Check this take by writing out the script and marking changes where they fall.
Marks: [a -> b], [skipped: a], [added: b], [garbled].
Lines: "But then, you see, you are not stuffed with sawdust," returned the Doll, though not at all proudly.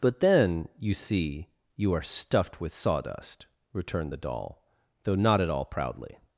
"But then, you see, you are [skipped: not] stuffed with sawdust," returned the Doll, though not at all proudly.